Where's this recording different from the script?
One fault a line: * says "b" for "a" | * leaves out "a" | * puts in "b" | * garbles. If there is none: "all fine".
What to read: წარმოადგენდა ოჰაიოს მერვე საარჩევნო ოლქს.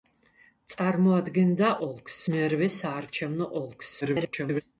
* says "ოლქს" for "ოჰაიოს"
* garbles